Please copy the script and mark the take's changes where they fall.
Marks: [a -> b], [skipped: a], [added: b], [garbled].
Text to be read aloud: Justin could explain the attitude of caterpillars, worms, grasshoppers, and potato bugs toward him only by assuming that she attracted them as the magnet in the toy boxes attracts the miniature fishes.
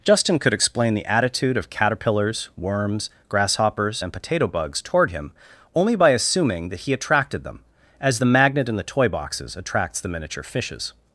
Justin could explain the attitude of caterpillars, worms, grasshoppers, and potato bugs toward him only by assuming that [she -> he] attracted them as the magnet in the toy boxes attracts the miniature fishes.